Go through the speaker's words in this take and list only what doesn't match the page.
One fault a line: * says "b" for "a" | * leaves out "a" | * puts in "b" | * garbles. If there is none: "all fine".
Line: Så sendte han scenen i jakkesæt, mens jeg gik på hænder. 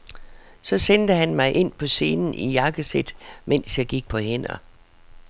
* puts in "mig ind på"